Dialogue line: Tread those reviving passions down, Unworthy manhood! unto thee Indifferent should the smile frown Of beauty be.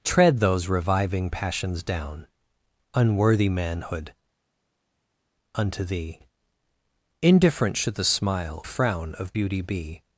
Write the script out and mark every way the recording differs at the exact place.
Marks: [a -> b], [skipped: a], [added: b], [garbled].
Tread those reviving passions down, Unworthy manhood! unto thee Indifferent should the smile frown Of beauty be.